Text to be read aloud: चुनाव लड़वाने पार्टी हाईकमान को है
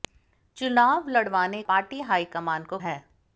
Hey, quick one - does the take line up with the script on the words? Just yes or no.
yes